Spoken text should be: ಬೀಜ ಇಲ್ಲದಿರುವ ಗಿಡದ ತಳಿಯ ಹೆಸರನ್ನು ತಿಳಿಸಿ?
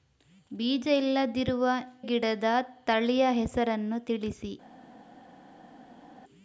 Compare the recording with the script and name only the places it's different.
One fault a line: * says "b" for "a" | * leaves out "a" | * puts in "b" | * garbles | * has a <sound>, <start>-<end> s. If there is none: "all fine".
all fine